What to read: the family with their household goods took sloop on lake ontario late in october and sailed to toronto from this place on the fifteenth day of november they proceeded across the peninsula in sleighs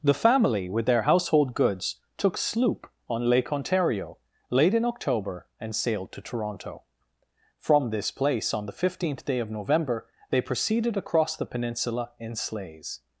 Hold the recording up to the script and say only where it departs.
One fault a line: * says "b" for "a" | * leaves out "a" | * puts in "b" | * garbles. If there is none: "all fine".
all fine